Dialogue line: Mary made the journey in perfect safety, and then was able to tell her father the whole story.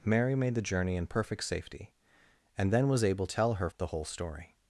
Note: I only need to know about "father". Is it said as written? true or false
false